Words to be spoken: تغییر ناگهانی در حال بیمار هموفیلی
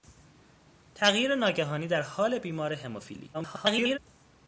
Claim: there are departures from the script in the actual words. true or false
true